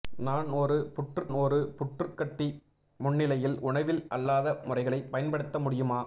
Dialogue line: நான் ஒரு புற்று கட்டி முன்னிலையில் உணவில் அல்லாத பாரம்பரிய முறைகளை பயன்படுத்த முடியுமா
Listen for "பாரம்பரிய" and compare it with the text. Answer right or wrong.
wrong